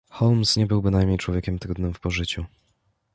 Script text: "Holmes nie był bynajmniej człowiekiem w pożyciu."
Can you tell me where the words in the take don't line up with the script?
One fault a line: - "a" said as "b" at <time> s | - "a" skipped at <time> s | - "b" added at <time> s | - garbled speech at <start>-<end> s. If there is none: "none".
- "trudnym" added at 1.6 s